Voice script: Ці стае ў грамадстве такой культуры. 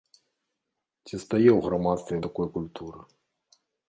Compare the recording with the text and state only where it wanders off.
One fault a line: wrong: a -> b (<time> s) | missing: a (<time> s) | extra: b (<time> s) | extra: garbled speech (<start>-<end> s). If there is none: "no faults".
no faults